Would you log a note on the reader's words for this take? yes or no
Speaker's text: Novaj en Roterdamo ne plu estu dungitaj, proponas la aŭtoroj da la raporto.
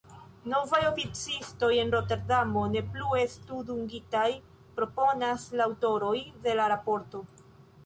yes